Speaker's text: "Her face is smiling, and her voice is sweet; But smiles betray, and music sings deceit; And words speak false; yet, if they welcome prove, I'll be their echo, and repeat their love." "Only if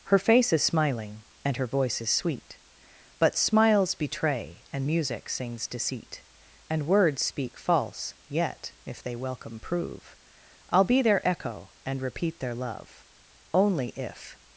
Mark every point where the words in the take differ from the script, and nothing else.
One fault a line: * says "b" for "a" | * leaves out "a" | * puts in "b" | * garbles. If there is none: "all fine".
all fine